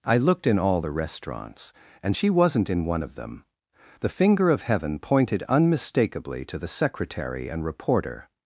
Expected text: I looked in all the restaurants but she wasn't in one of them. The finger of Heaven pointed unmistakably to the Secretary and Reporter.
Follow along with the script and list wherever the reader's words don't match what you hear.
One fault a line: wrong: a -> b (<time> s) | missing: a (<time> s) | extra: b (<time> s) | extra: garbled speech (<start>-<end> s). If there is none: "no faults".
wrong: but -> and (2.0 s)